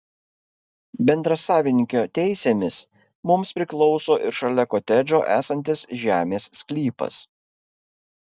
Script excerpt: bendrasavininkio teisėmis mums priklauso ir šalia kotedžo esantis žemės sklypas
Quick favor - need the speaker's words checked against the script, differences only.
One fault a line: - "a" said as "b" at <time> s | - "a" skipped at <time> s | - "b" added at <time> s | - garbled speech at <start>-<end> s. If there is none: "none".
none